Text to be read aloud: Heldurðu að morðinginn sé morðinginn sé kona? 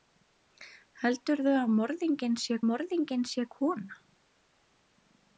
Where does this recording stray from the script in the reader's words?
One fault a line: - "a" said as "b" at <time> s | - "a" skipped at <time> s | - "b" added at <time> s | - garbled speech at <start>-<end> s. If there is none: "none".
none